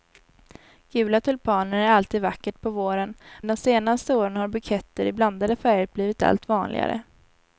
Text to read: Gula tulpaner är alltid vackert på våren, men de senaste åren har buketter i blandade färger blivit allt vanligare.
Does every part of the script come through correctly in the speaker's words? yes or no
no